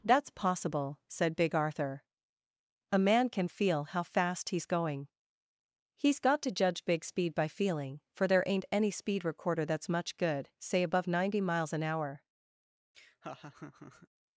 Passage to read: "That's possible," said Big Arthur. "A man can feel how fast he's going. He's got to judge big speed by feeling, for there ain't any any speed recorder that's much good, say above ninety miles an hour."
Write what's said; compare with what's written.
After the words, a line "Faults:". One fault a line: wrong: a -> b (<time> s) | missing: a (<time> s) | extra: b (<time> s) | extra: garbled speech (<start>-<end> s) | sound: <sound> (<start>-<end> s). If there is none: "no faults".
"That's possible," said Big Arthur. "A man can feel how fast he's going. He's got to judge big speed by feeling, for there ain't any speed recorder that's much good, say above ninety miles an hour."
Faults:
missing: any (8.9 s)
sound: laugh (12.9-14.1 s)